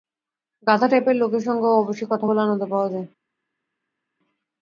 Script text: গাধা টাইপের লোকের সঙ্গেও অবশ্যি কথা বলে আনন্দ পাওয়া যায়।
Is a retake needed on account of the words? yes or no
no